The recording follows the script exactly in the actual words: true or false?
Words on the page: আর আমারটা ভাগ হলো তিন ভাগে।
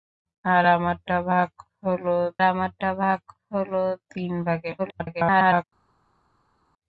false